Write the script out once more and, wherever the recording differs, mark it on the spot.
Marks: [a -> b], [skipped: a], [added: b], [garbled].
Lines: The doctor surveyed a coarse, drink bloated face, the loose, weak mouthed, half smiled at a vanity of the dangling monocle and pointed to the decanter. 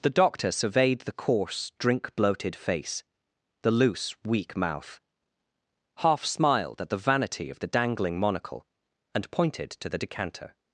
The doctor surveyed [a -> the] coarse, drink bloated face, the loose, weak [mouthed, -> mouth] half smiled at [a -> the] vanity of the dangling monocle and pointed to the decanter.